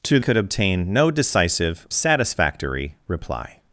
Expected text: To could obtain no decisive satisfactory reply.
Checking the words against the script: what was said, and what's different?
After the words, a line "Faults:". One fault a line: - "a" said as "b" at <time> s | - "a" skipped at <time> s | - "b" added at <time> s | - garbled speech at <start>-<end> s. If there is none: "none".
To could obtain no decisive satisfactory reply.
Faults:
none